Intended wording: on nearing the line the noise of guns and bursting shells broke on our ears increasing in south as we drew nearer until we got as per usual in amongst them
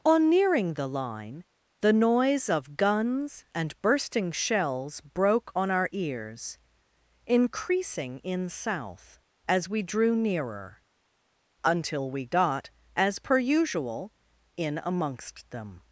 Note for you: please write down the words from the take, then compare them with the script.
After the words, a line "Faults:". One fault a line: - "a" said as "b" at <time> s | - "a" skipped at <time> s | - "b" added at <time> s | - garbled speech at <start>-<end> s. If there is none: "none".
on nearing the line the noise of guns and bursting shells broke on our ears increasing in south as we drew nearer until we got as per usual in amongst them
Faults:
none